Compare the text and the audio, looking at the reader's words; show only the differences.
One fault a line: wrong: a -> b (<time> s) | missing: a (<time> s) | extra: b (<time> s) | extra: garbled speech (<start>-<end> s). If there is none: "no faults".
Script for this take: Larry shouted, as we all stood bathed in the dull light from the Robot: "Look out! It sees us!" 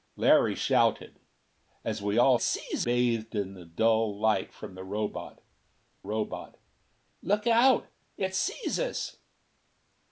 wrong: stood -> sees (2.4 s)
extra: Robot (6.0 s)